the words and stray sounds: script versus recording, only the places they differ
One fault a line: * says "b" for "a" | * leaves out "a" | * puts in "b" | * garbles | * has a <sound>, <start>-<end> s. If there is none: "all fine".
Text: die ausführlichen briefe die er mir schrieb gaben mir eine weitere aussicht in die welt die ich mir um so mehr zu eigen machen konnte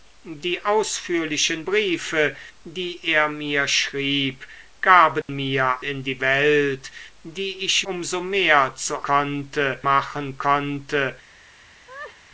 * has a dropout, 5.2-5.3 s
* leaves out "eine weitere aussicht"
* leaves out "mir"
* says "konnte" for "eigen"
* has a laugh, 11.9-12.2 s